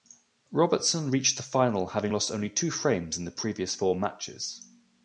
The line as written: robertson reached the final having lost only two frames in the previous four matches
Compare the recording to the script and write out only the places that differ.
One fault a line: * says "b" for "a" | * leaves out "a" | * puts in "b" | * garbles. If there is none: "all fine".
all fine